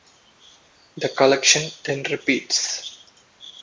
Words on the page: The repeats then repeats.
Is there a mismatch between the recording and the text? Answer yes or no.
yes